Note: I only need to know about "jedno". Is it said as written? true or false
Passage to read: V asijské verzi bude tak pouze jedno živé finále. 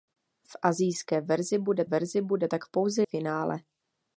false